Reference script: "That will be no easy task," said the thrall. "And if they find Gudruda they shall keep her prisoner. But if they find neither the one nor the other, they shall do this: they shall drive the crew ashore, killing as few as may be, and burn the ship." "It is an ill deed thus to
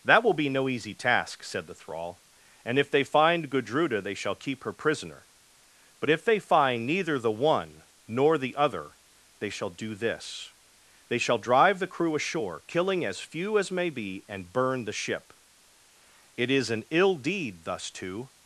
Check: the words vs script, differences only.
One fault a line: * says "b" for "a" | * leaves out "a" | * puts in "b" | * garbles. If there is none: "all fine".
all fine